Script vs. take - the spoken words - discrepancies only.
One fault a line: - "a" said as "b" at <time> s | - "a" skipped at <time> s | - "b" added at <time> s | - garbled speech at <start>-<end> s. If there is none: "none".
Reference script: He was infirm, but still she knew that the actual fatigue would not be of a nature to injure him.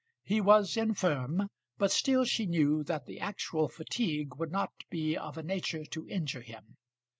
none